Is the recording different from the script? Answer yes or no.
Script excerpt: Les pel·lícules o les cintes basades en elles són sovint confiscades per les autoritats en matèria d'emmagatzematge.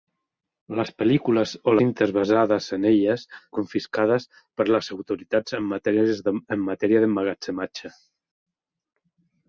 yes